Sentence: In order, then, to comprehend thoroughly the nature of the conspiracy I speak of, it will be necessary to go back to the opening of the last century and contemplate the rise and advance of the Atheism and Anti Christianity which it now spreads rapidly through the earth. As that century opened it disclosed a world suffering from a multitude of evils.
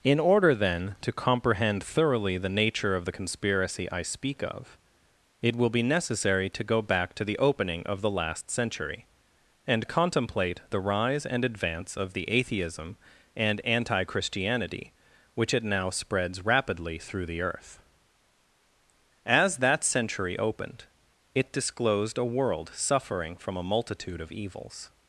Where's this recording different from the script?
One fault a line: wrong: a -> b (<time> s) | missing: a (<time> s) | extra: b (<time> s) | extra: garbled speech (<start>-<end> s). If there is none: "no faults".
no faults